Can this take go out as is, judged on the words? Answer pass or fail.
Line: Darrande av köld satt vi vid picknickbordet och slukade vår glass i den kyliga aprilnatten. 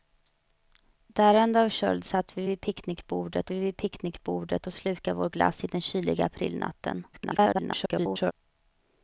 fail